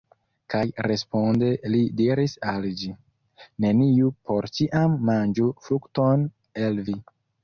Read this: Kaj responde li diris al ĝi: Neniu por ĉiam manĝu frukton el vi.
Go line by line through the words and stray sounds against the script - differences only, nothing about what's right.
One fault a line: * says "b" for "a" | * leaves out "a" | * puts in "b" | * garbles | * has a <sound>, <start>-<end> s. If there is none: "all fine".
all fine